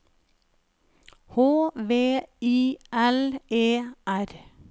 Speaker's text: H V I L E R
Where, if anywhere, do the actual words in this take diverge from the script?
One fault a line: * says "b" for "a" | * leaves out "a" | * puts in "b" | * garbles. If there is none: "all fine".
all fine